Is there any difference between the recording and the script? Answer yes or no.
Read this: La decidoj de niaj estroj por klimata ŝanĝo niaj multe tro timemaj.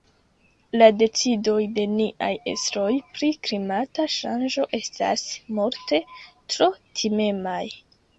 yes